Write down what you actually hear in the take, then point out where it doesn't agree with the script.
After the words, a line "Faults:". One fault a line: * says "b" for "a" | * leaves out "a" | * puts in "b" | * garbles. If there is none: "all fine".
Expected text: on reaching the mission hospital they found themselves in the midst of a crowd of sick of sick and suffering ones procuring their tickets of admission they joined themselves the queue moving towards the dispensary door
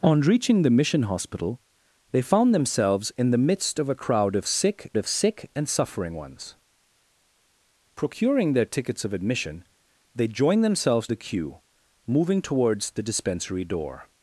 on reaching the mission hospital they found themselves in the midst of a crowd of sick of sick and suffering ones procuring their tickets of admission they joined themselves the queue moving towards the dispensary door
Faults:
all fine